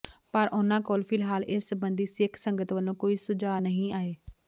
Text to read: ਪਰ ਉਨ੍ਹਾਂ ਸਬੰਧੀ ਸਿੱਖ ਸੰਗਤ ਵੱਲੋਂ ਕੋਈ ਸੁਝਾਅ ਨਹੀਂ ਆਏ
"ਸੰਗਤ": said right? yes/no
yes